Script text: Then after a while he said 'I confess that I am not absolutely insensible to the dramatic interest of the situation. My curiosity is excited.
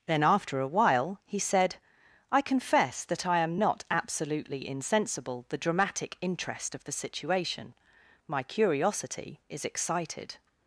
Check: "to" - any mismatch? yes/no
yes